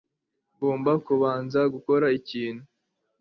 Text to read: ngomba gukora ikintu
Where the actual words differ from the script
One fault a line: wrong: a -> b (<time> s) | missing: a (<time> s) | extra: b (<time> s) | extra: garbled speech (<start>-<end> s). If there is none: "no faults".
extra: kubanza (1.1 s)